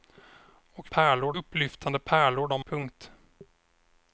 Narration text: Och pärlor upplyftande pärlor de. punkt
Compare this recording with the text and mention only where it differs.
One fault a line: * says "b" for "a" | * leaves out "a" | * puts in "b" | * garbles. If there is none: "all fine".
all fine